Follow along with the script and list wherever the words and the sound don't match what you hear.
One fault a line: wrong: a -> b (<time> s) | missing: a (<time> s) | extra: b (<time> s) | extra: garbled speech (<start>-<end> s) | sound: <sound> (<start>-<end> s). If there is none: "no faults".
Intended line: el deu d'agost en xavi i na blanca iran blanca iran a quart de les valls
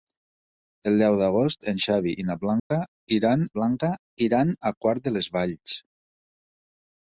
sound: dropout (2.6-2.7 s)